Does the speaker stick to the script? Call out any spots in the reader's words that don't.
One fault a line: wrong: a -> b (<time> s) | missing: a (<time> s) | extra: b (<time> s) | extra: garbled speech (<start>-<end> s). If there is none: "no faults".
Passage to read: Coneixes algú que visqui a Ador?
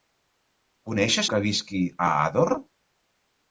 missing: algú (1.3 s)